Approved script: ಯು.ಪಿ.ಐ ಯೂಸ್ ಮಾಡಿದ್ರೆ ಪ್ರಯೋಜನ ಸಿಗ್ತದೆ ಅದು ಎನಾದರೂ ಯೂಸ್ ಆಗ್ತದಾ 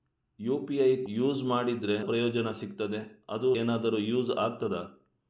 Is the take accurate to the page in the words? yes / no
yes